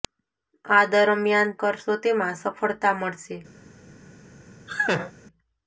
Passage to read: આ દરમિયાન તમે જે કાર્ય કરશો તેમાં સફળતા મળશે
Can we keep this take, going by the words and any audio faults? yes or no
no